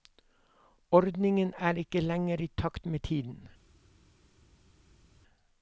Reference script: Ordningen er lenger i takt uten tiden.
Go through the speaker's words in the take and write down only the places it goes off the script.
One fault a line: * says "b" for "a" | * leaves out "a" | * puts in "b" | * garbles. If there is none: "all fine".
* puts in "ikke"
* says "med" for "uten"